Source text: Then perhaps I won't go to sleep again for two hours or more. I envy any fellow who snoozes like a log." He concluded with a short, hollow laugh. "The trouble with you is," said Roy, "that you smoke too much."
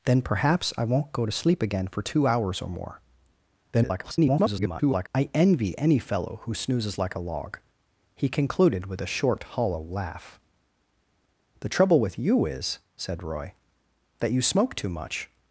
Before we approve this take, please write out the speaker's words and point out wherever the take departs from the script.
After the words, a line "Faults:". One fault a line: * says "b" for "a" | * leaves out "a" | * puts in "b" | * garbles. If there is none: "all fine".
Then perhaps I won't go to sleep again for two hours or more. [garbled] I envy any fellow who snoozes like a log." He concluded with a short, hollow laugh. "The trouble with you is," said Roy, "that you smoke too much."
Faults:
* garbles